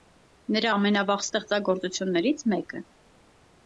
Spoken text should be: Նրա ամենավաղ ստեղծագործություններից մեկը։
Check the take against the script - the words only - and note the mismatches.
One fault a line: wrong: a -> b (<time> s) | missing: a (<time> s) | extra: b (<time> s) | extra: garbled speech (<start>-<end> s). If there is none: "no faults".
no faults